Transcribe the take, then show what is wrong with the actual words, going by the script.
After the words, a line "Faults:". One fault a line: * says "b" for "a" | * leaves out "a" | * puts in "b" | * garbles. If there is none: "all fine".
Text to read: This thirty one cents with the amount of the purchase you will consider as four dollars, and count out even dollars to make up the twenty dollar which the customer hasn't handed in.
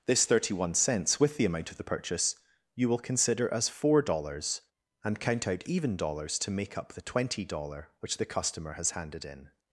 This thirty one cents with the amount of the purchase you will consider as four dollars, and count out even dollars to make up the twenty dollar which the customer has handed in.
Faults:
* says "has" for "hasn't"